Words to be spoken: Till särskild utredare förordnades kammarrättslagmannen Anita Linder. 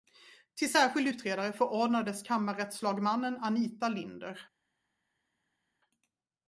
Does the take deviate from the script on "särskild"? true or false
false